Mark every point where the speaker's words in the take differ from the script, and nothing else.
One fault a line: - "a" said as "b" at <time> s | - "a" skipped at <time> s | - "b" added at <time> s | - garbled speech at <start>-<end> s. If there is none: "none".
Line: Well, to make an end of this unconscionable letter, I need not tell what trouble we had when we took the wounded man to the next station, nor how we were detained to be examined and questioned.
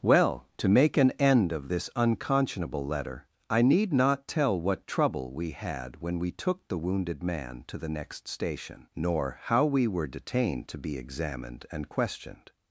none